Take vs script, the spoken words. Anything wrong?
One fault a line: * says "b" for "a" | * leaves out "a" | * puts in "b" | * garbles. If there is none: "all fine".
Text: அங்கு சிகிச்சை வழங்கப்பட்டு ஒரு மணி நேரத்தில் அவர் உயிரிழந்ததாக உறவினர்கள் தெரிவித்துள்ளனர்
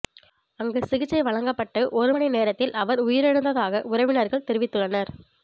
all fine